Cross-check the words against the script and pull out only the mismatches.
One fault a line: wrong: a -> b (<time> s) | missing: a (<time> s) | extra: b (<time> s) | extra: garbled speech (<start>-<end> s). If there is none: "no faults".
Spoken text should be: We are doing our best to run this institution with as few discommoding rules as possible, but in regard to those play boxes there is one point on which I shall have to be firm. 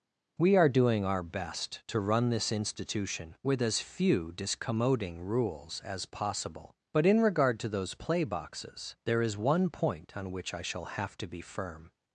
no faults